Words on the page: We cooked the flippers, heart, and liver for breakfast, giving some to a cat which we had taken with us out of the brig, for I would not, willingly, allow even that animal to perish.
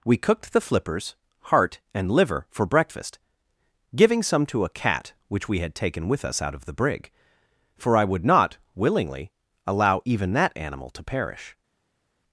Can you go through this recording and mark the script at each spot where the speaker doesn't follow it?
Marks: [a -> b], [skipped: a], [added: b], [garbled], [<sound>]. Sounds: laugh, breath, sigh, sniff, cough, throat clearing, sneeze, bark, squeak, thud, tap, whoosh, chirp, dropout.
We cooked the flippers, heart, and liver for breakfast, giving some to a cat which we had taken with us out of the brig, for I would not, willingly, allow even that animal to perish.